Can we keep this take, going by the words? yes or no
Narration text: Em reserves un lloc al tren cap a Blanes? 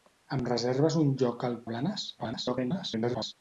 no